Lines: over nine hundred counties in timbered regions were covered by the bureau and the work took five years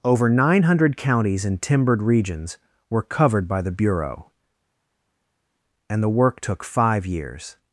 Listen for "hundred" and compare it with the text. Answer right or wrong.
right